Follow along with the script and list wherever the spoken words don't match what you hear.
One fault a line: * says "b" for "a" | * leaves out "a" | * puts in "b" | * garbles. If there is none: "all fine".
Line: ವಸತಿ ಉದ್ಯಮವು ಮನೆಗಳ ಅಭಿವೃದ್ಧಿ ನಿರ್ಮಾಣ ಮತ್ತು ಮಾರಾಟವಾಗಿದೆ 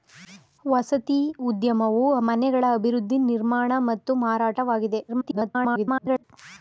* garbles